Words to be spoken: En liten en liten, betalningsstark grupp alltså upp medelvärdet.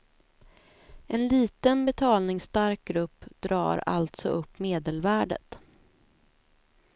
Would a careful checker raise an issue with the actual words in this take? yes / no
yes